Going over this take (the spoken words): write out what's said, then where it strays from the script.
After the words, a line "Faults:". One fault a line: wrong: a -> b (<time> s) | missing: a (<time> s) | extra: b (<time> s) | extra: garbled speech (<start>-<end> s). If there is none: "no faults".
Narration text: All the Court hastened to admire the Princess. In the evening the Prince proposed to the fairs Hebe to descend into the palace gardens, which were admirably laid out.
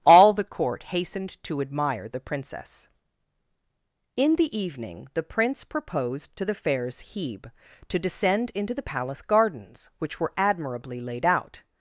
All the Court hastened to admire the Princess. In the evening the Prince proposed to the fairs Hebe to descend into the palace gardens, which were admirably laid out.
Faults:
no faults